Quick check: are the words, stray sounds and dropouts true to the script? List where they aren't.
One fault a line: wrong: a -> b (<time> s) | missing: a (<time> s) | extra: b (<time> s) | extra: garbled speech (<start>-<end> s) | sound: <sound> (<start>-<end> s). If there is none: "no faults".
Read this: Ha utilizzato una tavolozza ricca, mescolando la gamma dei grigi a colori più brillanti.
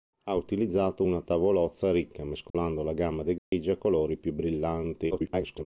sound: dropout (2.5-2.5 s)
sound: dropout (3.4-3.5 s)
extra: garbled speech (5.1-5.7 s)